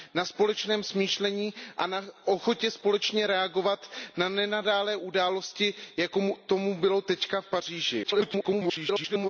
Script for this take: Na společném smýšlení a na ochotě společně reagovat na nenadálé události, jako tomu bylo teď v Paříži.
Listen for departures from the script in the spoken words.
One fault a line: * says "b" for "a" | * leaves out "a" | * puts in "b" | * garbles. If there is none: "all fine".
* garbles